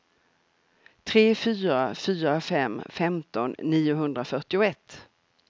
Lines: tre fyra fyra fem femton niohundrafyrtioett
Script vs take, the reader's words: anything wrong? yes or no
no